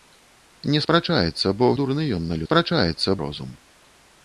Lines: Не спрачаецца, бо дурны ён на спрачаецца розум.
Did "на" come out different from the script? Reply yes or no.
no